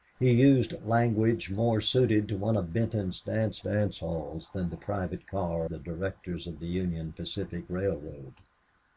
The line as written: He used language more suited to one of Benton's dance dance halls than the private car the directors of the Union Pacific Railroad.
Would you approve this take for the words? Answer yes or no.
yes